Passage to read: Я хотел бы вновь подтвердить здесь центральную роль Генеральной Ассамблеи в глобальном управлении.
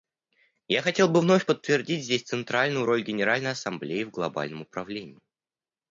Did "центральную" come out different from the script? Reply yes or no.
no